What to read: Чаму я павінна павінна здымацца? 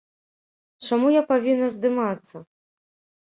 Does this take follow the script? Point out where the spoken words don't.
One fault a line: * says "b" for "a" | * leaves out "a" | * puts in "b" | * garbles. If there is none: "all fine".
* leaves out "павінна"